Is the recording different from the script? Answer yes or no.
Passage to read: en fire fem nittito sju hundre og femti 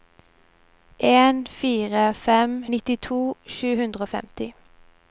no